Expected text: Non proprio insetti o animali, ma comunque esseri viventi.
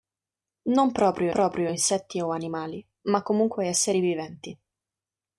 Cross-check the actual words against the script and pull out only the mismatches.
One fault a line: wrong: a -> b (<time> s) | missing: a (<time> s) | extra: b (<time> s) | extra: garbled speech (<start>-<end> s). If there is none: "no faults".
extra: proprio (1.3 s)